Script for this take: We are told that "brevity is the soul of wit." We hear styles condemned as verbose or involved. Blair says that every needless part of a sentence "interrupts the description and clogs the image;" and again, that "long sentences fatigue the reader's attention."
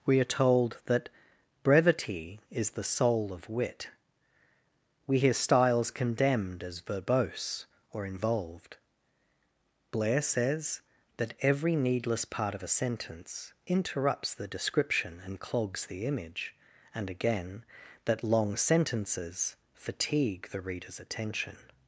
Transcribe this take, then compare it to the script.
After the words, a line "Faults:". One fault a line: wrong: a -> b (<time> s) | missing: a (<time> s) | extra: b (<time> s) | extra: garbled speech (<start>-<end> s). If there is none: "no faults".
We are told that "brevity is the soul of wit." We hear styles condemned as verbose or involved. Blair says that every needless part of a sentence "interrupts the description and clogs the image;" and again, that "long sentences fatigue the reader's attention."
Faults:
no faults